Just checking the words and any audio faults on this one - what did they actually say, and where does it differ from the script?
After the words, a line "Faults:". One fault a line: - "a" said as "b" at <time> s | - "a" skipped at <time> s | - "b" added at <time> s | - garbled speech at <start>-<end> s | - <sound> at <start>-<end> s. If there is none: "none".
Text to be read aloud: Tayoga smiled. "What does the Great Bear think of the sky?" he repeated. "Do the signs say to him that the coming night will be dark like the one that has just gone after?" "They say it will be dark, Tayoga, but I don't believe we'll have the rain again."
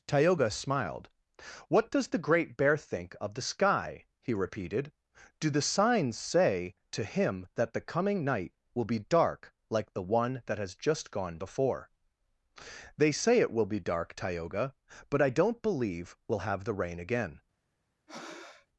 Tayoga smiled. "What does the Great Bear think of the sky?" he repeated. "Do the signs say to him that the coming night will be dark like the one that has just gone before?" "They say it will be dark, Tayoga, but I don't believe we'll have the rain again."
Faults:
- "after" said as "before" at 11.4 s
- breath at 18.1-18.7 s